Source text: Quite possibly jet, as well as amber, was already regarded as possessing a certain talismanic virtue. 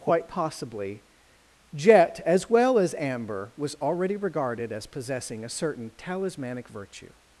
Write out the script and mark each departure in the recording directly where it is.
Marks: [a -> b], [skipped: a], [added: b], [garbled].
Quite possibly jet, as well as amber, was already regarded as possessing a certain talismanic virtue.